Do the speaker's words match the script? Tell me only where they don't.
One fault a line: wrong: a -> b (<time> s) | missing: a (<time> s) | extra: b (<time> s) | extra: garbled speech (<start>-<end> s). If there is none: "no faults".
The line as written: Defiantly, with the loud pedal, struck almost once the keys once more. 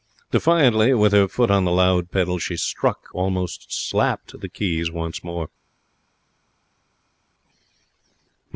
extra: her foot on (1.1 s)
extra: she (2.4 s)
wrong: once -> slapped (3.7 s)